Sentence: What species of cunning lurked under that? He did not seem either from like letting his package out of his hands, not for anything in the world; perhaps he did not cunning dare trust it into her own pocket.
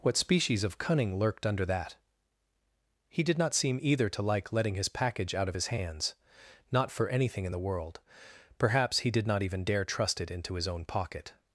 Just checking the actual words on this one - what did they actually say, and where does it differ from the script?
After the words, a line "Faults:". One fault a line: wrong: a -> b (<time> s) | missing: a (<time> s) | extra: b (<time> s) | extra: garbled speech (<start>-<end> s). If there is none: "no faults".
What species of cunning lurked under that? He did not seem either to like letting his package out of his hands, not for anything in the world; perhaps he did not even dare trust it into his own pocket.
Faults:
wrong: from -> to (4.1 s)
wrong: cunning -> even (9.4 s)
wrong: her -> his (10.6 s)